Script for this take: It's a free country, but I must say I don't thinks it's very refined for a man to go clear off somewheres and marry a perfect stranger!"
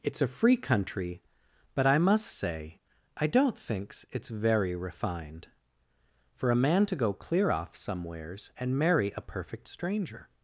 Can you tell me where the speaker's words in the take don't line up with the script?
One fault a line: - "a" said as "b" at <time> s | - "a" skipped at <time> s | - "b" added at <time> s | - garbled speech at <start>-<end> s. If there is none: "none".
none